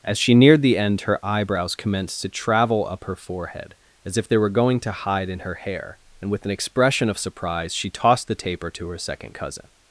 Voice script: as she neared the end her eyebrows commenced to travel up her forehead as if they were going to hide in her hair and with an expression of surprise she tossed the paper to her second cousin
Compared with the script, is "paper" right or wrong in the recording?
wrong